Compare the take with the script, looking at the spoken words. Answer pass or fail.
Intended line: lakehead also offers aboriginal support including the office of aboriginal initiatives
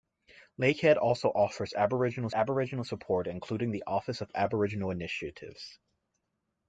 fail